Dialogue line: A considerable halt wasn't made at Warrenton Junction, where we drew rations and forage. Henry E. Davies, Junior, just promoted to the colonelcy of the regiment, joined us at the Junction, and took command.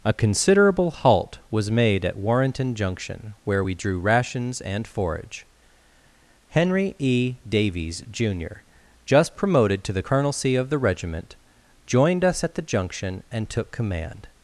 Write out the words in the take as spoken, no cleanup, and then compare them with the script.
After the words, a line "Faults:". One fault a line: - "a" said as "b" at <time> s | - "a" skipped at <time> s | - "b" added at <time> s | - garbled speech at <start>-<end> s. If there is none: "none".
A considerable halt was made at Warrenton Junction, where we drew rations and forage. Henry E. Davies, Junior, just promoted to the colonelcy of the regiment, joined us at the Junction, and took command.
Faults:
- "wasn't" said as "was" at 1.5 s